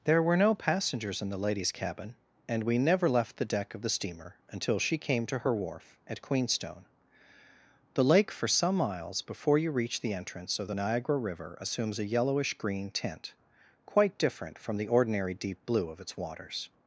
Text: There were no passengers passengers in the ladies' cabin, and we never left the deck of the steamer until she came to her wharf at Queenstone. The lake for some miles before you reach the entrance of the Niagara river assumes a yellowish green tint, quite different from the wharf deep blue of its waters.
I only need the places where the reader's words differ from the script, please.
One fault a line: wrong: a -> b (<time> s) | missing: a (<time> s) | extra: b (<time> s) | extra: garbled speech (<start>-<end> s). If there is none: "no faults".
missing: passengers (1.2 s)
wrong: wharf -> ordinary (14.9 s)